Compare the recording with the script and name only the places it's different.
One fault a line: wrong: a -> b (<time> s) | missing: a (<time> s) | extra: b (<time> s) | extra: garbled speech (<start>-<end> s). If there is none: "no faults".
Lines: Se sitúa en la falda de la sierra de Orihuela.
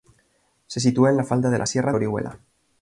missing: de (1.9 s)